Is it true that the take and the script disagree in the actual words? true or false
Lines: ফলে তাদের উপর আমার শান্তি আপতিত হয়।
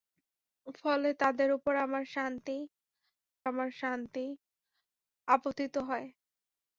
true